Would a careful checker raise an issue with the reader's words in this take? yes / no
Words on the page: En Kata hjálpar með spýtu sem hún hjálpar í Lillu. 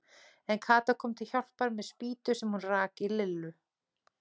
yes